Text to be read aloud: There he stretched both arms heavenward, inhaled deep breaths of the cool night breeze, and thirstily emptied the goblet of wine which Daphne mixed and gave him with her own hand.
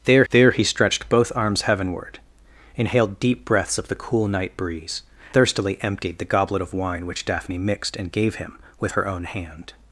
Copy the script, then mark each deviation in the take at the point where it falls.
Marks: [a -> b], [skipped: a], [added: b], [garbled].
There [added: there] he stretched both arms heavenward, inhaled deep breaths of the cool night breeze, [skipped: and] thirstily emptied the goblet of wine which Daphne mixed and gave him with her own hand.